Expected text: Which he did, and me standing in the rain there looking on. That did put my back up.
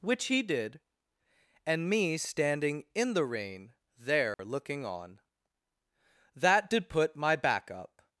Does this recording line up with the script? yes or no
yes